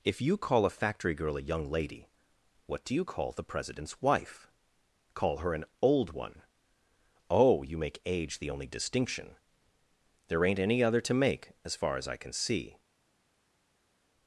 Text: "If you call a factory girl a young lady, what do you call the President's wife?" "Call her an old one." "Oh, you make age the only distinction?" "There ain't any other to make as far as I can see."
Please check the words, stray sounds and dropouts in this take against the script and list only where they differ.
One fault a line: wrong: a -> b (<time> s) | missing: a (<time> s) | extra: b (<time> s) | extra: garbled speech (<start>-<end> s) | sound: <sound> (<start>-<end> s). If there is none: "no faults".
no faults